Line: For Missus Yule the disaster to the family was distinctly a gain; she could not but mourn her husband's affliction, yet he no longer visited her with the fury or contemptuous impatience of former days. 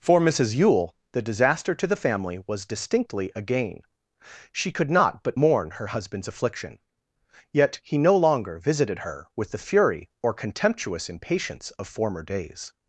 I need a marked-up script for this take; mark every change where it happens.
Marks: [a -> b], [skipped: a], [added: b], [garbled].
For Missus Yule the disaster to the family was distinctly a gain; she could not but mourn her husband's affliction, yet he no longer visited her with the fury or contemptuous impatience of former days.